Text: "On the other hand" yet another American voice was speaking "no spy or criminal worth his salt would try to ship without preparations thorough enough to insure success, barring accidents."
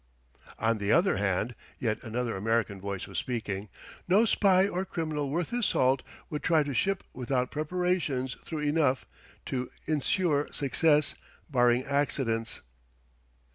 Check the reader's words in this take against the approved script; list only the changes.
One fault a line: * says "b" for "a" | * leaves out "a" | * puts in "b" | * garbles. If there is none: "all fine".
all fine